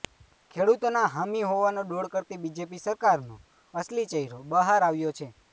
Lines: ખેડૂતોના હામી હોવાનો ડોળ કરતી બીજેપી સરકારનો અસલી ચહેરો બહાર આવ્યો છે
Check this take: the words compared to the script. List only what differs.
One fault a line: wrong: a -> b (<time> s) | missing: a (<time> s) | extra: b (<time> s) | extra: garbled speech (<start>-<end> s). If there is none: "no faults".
no faults